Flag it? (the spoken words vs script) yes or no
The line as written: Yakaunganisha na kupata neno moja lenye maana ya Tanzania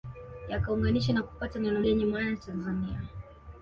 yes